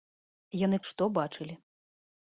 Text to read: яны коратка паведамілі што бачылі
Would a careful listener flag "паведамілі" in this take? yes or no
yes